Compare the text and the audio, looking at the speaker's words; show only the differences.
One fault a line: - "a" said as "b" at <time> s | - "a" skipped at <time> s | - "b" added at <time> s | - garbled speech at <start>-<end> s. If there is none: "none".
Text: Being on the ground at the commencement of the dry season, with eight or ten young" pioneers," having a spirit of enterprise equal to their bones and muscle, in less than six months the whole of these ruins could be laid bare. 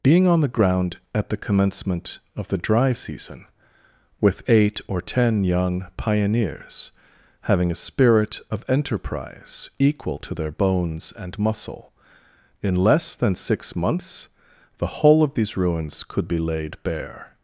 none